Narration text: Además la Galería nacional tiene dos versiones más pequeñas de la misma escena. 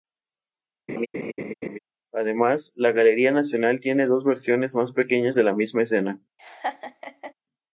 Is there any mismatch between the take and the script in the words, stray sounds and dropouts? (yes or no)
yes